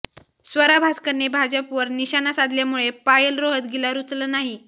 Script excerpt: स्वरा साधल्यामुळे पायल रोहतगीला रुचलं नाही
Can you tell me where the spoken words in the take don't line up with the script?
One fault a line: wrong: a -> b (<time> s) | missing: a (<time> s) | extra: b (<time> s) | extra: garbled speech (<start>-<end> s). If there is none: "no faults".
extra: भास्करने भाजपवर निशाणा (0.8 s)